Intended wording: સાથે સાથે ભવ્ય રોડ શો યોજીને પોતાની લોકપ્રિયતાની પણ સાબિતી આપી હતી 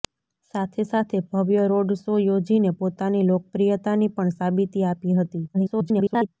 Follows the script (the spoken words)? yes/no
no